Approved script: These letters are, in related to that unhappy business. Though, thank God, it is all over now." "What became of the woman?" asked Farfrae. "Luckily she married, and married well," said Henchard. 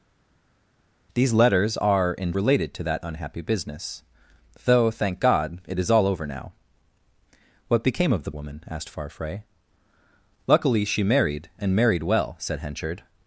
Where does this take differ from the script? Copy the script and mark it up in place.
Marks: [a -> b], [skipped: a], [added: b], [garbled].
These letters are, in related to that unhappy business. Though, thank God, it is all over now." "What became of the woman?" asked Farfrae. "Luckily she married, and married well," said Henchard.